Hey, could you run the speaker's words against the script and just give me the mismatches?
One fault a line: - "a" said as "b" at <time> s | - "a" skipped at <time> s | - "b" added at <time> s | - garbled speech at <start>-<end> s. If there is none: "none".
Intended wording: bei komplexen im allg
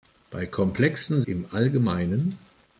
none